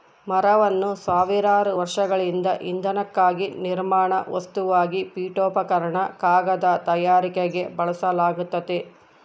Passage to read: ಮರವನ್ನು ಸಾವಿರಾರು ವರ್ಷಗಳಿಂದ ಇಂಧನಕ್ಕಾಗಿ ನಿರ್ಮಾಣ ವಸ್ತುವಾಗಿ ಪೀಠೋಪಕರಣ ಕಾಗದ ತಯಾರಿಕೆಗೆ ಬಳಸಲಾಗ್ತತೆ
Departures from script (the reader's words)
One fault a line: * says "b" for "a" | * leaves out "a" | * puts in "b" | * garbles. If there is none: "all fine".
all fine